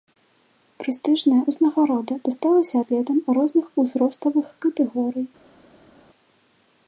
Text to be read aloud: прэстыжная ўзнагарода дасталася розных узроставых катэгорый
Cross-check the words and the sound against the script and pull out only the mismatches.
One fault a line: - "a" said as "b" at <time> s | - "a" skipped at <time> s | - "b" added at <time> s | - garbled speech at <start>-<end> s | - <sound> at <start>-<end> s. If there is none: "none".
- "атлетам" added at 2.8 s